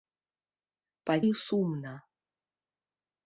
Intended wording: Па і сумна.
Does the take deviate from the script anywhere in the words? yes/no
no